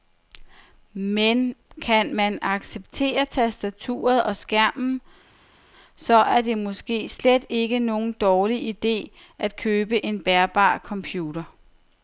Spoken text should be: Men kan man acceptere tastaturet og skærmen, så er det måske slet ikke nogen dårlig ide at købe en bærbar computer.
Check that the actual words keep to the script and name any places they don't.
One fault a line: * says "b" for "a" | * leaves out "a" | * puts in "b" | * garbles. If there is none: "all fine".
all fine